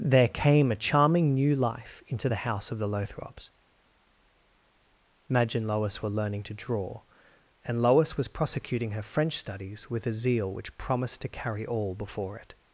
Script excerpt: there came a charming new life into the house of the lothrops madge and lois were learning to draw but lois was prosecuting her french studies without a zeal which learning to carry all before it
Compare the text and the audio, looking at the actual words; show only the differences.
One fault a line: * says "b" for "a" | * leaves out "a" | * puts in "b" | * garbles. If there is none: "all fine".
* says "and" for "but"
* says "with" for "without"
* says "promised" for "learning"